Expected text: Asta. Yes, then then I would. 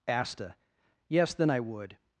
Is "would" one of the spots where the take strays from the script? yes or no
no